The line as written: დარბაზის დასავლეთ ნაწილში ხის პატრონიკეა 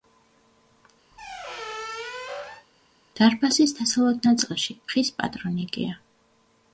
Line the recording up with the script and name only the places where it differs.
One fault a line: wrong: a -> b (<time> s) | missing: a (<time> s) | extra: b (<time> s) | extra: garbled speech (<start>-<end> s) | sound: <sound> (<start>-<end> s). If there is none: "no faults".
sound: squeak (1.1-2.7 s)